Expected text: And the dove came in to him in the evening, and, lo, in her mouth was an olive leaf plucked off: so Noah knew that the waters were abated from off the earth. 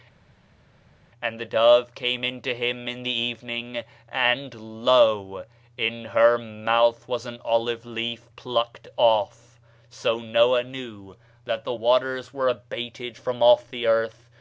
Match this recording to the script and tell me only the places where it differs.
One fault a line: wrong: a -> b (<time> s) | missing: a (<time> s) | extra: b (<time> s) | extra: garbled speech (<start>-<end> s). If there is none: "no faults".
no faults